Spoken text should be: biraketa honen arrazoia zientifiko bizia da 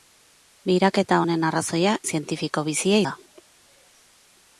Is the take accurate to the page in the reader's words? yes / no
yes